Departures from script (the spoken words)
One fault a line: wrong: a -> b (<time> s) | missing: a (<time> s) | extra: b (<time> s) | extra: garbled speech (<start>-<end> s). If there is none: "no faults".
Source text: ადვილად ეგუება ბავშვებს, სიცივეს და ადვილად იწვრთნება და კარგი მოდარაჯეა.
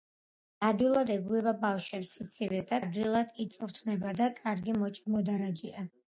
no faults